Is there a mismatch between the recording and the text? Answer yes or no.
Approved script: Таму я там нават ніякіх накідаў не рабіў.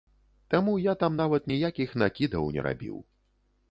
no